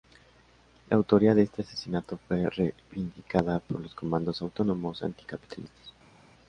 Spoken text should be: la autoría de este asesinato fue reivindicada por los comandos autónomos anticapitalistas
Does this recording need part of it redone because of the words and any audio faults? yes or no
no